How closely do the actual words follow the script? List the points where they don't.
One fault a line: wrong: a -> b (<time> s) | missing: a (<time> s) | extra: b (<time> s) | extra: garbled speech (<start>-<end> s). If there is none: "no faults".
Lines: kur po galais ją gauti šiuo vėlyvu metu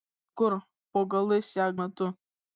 missing: gauti šiuo vėlyvu (1.7 s)